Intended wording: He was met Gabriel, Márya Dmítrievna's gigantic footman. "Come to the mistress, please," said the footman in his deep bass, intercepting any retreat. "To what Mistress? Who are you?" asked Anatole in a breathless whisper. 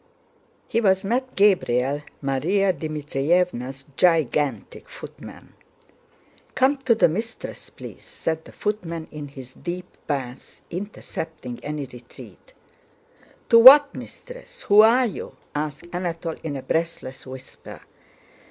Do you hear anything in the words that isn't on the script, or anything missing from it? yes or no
no